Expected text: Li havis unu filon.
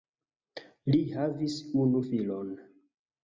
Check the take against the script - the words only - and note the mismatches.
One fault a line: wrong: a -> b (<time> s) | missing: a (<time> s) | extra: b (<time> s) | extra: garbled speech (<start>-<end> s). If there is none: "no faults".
no faults